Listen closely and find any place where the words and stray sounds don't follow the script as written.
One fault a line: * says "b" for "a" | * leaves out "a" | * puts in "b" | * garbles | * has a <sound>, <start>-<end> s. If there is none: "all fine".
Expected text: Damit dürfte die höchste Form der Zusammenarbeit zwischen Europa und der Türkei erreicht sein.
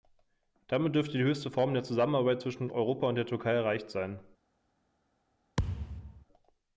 * has a thud, 5.6-6.2 s